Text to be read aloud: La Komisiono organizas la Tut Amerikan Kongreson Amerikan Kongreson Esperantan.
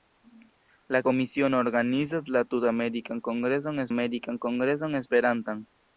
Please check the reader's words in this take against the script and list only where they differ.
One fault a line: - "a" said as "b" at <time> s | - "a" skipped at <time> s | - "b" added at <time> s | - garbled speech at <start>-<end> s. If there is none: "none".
none